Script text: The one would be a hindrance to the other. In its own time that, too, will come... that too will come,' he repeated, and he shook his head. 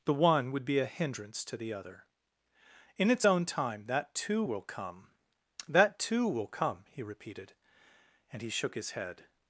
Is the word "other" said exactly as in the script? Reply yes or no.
yes